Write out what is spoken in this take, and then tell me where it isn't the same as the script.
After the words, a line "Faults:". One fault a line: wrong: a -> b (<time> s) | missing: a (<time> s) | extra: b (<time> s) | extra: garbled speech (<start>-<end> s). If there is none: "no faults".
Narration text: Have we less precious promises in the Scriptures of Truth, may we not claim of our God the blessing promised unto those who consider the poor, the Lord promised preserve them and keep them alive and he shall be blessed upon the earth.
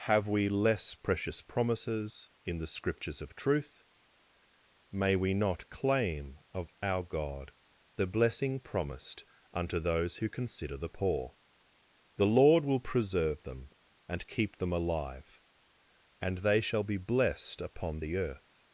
Have we less precious promises in the Scriptures of Truth, may we not claim of our God the blessing promised unto those who consider the poor, the Lord will preserve them and keep them alive and they shall be blessed upon the earth.
Faults:
wrong: promised -> will (12.7 s)
wrong: he -> they (16.4 s)